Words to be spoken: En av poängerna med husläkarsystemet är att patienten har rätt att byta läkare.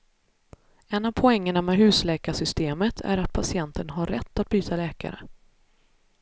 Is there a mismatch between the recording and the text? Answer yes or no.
no